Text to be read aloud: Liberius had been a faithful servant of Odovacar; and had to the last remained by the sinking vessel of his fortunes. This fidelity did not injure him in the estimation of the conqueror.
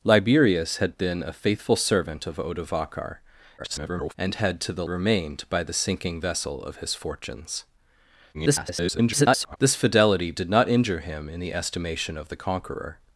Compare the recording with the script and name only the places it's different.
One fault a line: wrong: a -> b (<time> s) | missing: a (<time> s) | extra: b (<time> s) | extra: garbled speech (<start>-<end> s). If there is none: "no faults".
extra: garbled speech (3.6-4.1 s)
missing: last (4.8 s)
extra: garbled speech (8.3-9.6 s)